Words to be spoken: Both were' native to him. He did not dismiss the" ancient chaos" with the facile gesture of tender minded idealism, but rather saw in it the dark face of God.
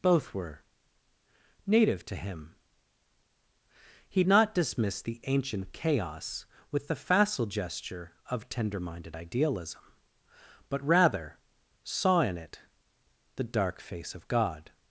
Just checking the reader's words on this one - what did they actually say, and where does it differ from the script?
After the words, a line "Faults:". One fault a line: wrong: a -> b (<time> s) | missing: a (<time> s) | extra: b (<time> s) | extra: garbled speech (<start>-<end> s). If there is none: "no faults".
Both were' native to him. He not dismiss the" ancient chaos" with the facile gesture of tender minded idealism, but rather saw in it the dark face of God.
Faults:
missing: did (4.2 s)